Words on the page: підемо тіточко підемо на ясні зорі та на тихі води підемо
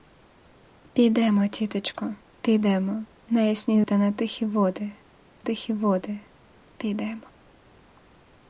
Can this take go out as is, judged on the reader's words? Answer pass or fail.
fail